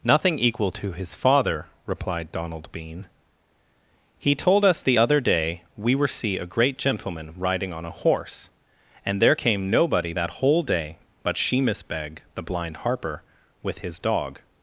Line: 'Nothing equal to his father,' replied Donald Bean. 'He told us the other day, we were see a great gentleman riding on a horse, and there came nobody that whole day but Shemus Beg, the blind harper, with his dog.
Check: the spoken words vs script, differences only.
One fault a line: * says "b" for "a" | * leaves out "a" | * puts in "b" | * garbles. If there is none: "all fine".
all fine